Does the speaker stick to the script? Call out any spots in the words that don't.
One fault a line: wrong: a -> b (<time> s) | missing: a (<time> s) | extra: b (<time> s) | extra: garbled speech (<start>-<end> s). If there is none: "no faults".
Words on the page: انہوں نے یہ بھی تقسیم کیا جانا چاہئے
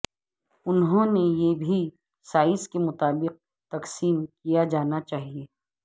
extra: سائز کے مطابق (2.2 s)